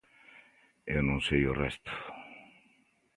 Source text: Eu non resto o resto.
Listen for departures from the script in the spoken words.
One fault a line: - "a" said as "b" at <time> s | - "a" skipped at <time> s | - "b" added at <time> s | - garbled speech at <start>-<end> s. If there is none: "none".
- "resto" said as "sei" at 1.3 s